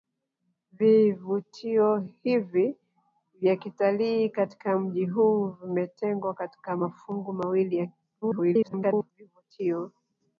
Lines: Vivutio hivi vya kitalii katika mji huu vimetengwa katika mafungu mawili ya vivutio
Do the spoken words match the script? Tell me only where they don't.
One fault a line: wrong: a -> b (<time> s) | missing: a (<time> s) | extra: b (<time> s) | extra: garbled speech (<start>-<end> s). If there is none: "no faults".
extra: garbled speech (8.2-9.1 s)